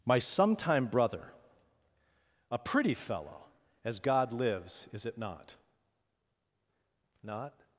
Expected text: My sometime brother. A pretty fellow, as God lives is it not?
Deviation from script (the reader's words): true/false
true